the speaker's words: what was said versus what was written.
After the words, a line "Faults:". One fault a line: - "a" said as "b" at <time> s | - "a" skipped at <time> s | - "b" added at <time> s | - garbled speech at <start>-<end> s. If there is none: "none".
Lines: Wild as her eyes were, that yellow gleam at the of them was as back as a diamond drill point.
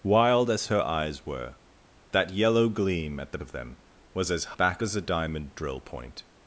Wild as her eyes were, that yellow gleam at the of them was as back as a diamond drill point.
Faults:
none